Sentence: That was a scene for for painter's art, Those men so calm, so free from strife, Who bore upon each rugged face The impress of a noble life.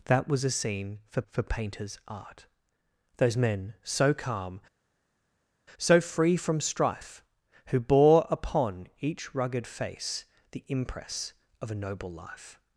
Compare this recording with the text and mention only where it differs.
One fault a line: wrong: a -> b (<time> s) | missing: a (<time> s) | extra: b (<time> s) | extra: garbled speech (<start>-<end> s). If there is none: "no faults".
no faults